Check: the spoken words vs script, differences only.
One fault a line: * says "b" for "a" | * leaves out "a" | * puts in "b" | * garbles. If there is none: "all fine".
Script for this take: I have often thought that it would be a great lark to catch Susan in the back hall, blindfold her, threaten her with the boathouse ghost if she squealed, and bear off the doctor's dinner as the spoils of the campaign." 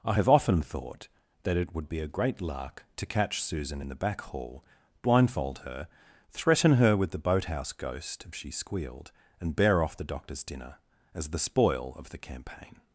* says "spoil" for "spoils"